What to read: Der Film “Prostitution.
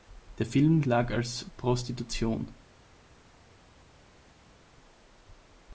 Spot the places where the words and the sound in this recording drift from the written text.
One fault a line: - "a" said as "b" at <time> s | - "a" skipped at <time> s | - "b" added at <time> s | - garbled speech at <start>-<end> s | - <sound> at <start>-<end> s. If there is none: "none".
- "lag als" added at 0.8 s